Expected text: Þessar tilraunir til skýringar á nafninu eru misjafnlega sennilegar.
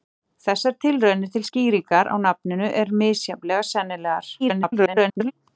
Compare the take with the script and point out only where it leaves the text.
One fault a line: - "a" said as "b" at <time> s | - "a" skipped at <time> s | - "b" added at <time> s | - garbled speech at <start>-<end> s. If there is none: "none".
- garbled speech at 4.4-5.3 s